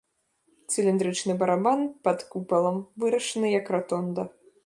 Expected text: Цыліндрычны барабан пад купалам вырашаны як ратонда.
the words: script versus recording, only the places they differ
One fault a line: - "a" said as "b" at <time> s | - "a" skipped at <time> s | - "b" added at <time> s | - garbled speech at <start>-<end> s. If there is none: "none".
none